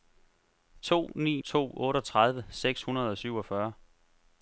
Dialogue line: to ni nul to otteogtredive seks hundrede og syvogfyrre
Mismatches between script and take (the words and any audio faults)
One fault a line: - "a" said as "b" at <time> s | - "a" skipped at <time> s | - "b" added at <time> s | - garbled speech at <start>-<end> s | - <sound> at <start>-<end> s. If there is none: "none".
- "nul" skipped at 1.4 s